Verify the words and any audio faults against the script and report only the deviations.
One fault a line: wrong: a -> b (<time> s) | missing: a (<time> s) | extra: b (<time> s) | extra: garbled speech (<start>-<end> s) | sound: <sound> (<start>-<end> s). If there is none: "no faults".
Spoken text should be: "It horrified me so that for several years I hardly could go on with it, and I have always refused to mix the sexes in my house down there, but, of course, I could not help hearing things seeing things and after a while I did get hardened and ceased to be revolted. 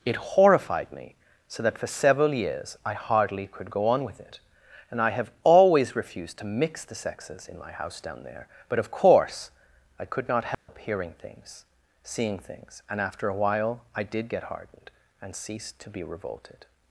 sound: dropout (10.5-10.7 s)